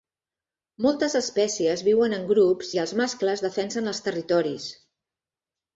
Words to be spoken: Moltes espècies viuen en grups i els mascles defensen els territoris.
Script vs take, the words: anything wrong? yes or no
no